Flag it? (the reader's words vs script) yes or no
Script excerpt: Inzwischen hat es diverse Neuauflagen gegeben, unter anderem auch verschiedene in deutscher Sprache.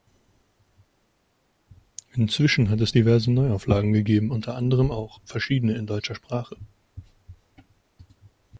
no